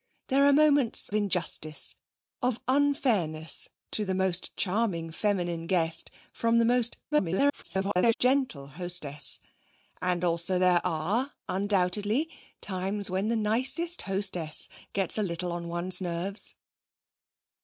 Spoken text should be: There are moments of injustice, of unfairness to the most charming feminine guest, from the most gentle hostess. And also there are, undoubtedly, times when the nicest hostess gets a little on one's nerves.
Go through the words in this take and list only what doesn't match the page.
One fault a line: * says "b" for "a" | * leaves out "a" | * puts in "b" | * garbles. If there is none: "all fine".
* leaves out "of"
* garbles